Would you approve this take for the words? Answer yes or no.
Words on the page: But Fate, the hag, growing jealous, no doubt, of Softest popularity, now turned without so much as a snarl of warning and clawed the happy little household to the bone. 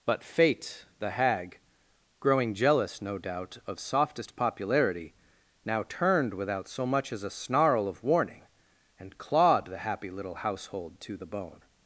yes